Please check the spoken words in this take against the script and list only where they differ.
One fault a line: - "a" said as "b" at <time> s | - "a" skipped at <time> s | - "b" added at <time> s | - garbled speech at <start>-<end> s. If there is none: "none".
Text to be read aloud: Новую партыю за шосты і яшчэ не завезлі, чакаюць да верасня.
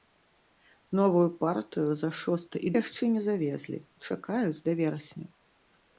none